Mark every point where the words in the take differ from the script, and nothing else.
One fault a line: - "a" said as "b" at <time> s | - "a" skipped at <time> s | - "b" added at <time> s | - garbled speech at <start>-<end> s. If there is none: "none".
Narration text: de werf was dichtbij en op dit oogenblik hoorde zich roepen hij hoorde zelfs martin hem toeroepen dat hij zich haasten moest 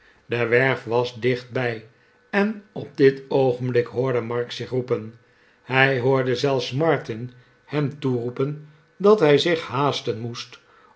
- "mark" added at 4.2 s